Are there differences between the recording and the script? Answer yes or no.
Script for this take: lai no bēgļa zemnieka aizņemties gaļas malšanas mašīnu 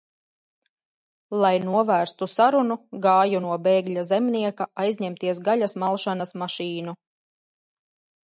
yes